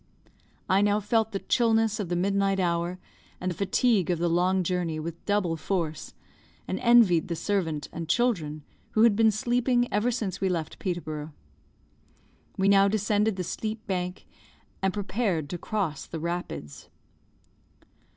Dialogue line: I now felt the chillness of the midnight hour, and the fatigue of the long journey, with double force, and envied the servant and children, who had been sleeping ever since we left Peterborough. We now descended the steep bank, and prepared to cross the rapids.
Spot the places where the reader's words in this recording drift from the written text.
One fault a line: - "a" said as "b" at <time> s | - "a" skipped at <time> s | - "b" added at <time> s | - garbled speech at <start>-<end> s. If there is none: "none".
none